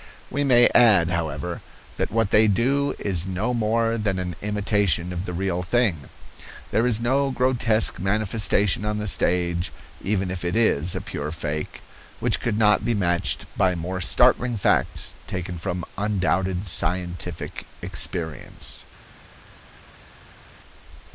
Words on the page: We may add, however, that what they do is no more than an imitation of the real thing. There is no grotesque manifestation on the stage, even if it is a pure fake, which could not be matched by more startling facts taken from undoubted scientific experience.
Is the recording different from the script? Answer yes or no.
no